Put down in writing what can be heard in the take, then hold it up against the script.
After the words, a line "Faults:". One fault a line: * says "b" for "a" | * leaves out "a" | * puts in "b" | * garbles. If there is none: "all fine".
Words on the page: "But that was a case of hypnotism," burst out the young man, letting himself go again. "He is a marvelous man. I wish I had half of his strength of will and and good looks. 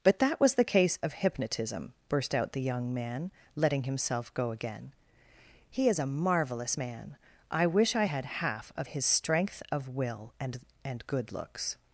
"But that was the case of hypnotism," burst out the young man, letting himself go again. "He is a marvelous man. I wish I had half of his strength of will and and good looks.
Faults:
* says "the" for "a"